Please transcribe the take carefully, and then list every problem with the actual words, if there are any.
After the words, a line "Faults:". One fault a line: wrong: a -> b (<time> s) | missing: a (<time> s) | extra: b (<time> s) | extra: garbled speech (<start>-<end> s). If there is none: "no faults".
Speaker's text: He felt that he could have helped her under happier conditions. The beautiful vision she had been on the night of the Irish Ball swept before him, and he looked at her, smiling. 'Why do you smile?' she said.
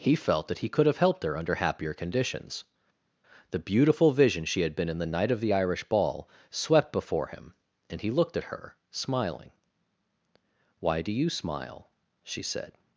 He felt that he could have helped her under happier conditions. The beautiful vision she had been in the night of the Irish Ball swept before him, and he looked at her, smiling. 'Why do you smile?' she said.
Faults:
wrong: on -> in (4.9 s)